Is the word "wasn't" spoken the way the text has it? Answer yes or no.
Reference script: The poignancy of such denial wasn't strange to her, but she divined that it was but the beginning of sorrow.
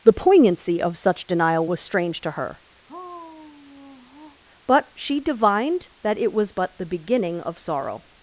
no